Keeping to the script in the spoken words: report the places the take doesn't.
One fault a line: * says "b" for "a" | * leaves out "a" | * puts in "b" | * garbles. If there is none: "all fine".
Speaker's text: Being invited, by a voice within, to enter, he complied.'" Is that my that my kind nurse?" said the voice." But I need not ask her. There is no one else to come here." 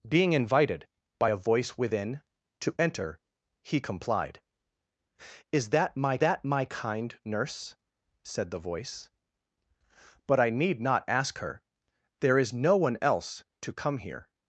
all fine